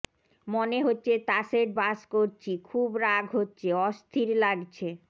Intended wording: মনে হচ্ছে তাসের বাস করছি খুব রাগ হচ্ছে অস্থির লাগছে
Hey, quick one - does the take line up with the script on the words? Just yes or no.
yes